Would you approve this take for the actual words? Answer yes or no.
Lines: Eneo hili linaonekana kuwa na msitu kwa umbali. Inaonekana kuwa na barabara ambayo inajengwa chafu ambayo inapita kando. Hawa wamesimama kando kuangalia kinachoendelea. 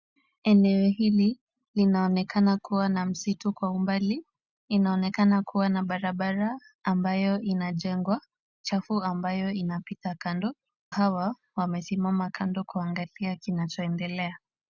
yes